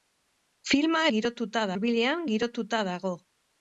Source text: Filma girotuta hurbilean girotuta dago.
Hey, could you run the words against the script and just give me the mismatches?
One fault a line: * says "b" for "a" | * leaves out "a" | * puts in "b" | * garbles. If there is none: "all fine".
all fine